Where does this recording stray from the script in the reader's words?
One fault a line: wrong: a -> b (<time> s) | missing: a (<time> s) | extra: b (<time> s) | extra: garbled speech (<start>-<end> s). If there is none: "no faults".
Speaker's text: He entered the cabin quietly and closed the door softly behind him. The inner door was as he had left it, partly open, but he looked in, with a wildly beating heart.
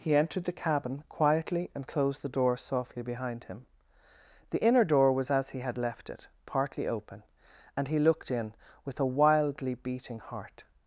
wrong: but -> and (7.8 s)